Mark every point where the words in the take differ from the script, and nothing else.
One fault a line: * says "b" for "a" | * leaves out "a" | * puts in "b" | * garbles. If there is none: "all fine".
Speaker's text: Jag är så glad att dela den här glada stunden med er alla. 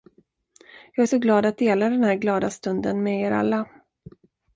all fine